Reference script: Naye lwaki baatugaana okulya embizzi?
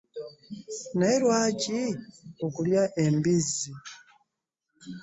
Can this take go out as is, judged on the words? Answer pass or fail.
fail